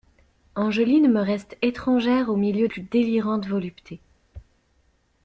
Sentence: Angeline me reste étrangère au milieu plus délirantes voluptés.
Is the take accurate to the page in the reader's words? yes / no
yes